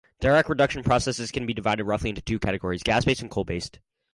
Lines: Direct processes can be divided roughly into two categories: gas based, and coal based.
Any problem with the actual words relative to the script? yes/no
yes